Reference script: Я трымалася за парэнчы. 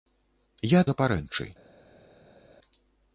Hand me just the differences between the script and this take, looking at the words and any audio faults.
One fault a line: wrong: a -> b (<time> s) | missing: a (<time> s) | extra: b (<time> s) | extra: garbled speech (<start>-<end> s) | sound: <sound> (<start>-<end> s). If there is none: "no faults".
missing: трымалася (0.8 s)